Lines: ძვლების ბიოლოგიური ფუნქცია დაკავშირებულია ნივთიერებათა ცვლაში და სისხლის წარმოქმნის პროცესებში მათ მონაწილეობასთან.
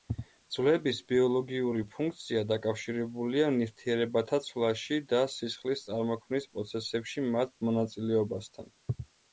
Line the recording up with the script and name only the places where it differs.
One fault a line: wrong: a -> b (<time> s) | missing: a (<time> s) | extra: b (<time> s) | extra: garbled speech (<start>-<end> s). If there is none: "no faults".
no faults